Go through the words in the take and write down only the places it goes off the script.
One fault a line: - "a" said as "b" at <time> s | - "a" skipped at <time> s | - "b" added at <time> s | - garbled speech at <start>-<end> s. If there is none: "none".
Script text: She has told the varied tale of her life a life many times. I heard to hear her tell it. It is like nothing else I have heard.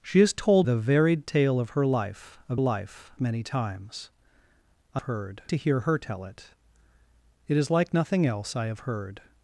none